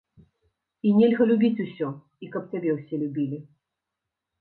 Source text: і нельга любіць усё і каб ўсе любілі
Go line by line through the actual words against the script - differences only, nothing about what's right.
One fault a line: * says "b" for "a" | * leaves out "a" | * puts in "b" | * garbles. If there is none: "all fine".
* puts in "цябе"